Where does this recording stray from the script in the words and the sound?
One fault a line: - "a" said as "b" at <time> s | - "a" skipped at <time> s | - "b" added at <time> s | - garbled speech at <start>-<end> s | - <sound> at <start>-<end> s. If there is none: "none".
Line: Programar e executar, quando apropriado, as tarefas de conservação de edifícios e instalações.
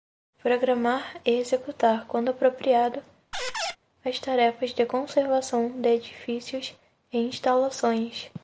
- squeak at 3.3-3.8 s